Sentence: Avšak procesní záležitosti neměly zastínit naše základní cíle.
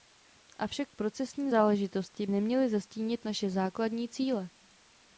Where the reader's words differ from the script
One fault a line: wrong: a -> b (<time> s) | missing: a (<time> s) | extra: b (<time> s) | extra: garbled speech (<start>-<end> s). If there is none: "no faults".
no faults